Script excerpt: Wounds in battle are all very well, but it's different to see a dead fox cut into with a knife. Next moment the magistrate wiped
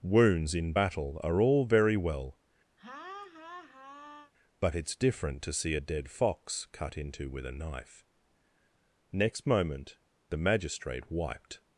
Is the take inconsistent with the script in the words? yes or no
no